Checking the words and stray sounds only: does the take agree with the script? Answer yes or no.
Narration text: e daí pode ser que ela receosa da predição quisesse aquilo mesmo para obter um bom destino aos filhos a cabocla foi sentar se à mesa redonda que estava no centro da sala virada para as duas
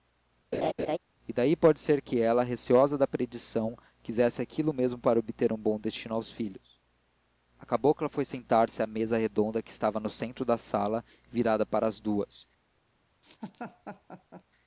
no